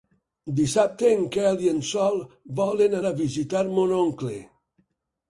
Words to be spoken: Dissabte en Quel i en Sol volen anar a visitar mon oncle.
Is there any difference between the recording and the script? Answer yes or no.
yes